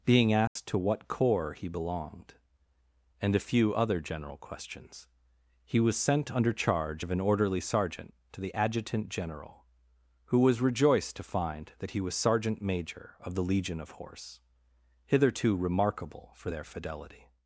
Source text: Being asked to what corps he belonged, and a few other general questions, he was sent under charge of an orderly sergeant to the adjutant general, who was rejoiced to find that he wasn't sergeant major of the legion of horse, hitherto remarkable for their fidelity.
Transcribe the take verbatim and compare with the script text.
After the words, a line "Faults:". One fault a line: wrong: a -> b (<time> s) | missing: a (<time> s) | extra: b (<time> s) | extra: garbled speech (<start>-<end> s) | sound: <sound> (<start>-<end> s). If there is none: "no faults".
Being asked to what corps he belonged, and a few other general questions, he was sent under charge of an orderly sergeant to the adjutant general, who was rejoiced to find that he was sergeant major of the legion of horse, hitherto remarkable for their fidelity.
Faults:
sound: dropout (0.5-0.6 s)
wrong: wasn't -> was (12.0 s)